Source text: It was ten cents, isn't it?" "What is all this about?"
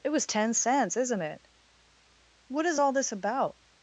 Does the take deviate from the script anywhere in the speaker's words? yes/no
no